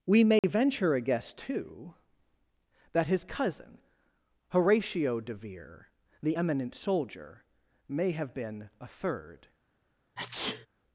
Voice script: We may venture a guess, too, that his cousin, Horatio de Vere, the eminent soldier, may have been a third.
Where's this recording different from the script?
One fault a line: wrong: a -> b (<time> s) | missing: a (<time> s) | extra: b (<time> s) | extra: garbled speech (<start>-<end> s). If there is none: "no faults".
no faults